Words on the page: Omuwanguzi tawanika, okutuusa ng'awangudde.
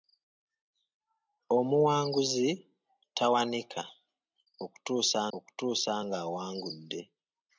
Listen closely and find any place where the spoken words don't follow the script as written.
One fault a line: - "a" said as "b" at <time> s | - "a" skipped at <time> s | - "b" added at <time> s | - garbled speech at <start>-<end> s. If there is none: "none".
- "okutuusa" added at 5.4 s